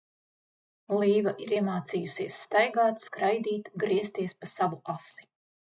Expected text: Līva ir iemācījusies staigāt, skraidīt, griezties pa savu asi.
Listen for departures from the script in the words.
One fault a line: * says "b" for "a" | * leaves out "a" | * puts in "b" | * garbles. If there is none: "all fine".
all fine